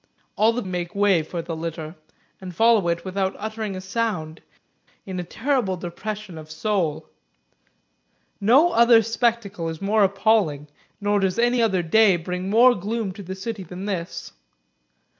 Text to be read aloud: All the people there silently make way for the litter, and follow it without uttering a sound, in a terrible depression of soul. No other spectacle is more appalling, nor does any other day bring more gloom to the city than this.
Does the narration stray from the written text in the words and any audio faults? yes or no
yes